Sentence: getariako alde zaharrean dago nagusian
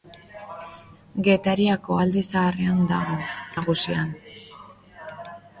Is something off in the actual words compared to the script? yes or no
no